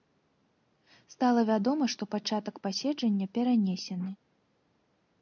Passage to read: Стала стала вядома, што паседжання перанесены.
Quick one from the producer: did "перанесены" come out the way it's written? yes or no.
yes